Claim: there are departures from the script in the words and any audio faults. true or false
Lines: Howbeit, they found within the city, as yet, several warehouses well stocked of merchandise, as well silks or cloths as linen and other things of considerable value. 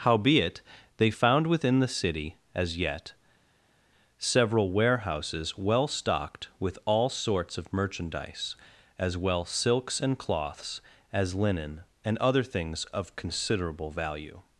true